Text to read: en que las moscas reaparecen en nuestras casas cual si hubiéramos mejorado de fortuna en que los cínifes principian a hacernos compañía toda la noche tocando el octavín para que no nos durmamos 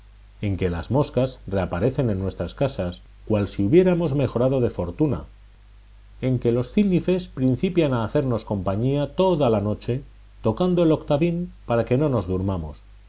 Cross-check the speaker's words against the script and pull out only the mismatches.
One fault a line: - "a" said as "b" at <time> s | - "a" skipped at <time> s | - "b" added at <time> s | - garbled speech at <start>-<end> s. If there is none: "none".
none